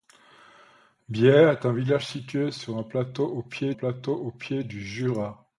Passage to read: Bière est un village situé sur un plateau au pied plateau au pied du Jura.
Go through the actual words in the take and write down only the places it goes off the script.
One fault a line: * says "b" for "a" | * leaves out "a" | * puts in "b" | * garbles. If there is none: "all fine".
all fine